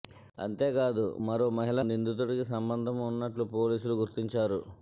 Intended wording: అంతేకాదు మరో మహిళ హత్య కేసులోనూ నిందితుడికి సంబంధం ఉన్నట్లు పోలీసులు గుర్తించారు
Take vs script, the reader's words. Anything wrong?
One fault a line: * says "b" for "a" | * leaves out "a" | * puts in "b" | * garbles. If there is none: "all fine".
* leaves out "హత్య కేసులోనూ"